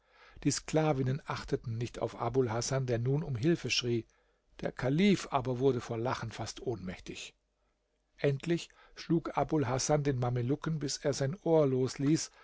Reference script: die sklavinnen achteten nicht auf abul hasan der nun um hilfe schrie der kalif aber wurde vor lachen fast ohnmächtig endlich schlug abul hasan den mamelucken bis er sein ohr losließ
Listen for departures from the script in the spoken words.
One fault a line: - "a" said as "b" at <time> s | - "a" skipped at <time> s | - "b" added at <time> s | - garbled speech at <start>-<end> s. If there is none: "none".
none